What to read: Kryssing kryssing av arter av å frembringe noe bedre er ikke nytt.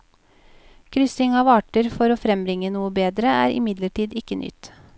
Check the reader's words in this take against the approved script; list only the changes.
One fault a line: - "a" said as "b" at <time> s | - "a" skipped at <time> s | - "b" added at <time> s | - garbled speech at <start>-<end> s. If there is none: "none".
- "kryssing" skipped at 1.4 s
- "av" said as "for" at 2.0 s
- "imidlertid" added at 3.6 s